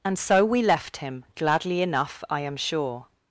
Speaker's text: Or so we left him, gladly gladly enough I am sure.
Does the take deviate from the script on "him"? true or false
false